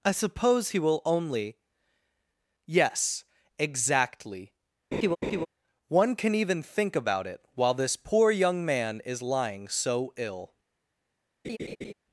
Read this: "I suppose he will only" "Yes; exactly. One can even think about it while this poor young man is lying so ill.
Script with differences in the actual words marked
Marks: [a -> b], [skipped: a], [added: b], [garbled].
"I suppose he will only" "Yes; exactly. One can even think about it while this poor young man is lying so ill.